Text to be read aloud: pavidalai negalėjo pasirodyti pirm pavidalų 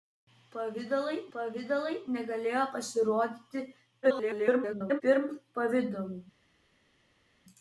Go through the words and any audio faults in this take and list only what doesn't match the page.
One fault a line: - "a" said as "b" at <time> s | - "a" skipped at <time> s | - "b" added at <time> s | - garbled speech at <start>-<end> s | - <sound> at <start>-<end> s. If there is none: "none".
- "pavidalai" added at 1.3 s
- garbled speech at 4.0-5.0 s